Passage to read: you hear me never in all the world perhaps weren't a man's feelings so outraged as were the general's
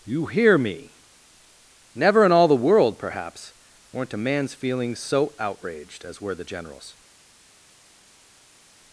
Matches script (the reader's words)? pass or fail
pass